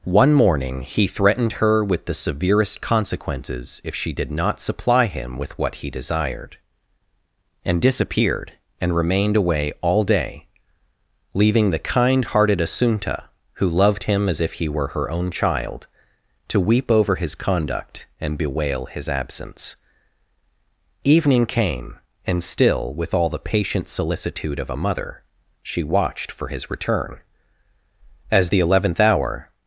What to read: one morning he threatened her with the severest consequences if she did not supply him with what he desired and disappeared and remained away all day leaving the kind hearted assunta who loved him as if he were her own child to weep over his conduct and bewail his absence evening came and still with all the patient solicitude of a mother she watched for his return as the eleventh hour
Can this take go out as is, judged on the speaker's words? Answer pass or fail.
pass